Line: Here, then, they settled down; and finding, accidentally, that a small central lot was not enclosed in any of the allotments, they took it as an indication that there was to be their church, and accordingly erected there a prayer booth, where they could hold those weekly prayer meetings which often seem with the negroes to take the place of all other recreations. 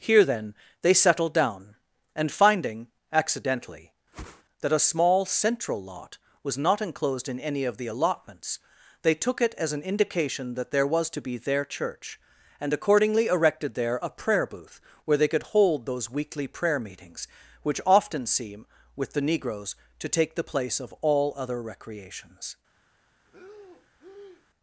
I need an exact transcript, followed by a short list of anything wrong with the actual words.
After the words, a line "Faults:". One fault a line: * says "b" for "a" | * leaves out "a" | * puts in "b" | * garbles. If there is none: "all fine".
Here, then, they settled down; and finding, accidentally, that a small central lot was not enclosed in any of the allotments, they took it as an indication that there was to be their church, and accordingly erected there a prayer booth, where they could hold those weekly prayer meetings which often seem with the negroes to take the place of all other recreations.
Faults:
all fine